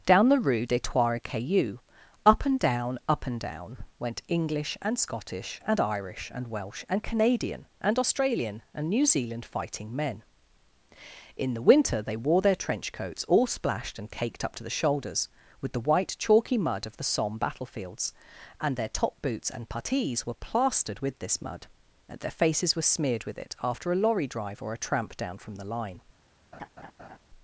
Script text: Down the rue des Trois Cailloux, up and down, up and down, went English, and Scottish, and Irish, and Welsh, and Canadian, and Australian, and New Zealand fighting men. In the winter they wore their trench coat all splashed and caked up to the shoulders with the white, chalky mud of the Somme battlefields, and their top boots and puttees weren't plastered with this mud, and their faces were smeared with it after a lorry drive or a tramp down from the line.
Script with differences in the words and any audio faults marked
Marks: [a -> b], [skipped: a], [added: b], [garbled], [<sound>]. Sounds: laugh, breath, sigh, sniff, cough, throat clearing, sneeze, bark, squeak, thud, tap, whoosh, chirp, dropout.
Down the rue des Trois Cailloux, up and down, up and down, went English, and Scottish, and Irish, and Welsh, and Canadian, and Australian, and New Zealand fighting men. In the winter they wore their trench [coat -> coats] all splashed and caked up to the shoulders with the white, chalky mud of the Somme battlefields, and their top boots and puttees [weren't -> were] plastered with this mud, and their faces were smeared with it after a lorry drive or a tramp down from the line. [laugh]